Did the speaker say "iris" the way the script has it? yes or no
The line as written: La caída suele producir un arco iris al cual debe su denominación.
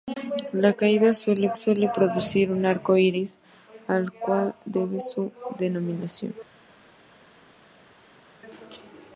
yes